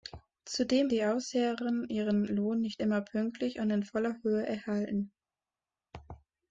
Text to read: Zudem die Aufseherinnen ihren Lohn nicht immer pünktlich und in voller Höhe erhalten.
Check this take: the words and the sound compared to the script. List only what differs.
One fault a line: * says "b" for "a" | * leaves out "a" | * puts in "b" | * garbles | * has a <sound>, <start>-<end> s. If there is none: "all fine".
all fine